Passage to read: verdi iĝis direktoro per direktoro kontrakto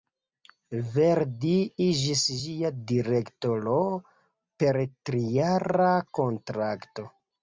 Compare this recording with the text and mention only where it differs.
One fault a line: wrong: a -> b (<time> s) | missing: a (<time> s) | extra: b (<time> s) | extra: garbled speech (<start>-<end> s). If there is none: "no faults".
extra: ĝia (2.4 s)
wrong: direktoro -> trijara (5.1 s)